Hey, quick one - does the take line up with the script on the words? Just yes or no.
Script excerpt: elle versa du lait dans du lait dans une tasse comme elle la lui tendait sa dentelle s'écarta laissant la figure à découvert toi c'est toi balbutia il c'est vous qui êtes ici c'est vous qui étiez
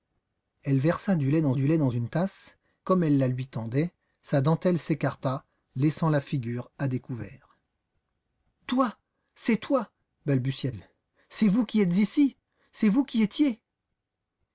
yes